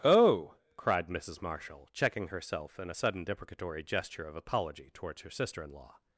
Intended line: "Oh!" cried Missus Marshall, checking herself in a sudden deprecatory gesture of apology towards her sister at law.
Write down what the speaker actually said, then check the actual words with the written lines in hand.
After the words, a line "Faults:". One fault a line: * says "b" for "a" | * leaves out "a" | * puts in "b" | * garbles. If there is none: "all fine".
"Oh!" cried Missus Marshall, checking herself in a sudden deprecatory gesture of apology towards her sister in law.
Faults:
* says "in" for "at"